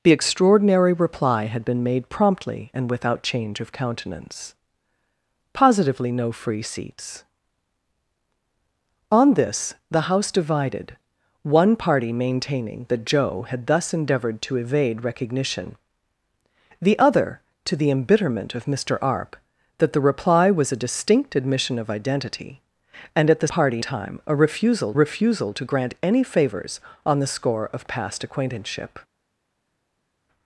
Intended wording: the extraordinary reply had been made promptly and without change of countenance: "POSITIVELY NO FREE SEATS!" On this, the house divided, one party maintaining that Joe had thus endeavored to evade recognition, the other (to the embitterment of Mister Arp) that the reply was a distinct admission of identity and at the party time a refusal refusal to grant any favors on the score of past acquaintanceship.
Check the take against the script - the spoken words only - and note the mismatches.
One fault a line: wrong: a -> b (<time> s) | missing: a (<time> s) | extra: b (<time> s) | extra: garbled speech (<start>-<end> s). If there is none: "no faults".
no faults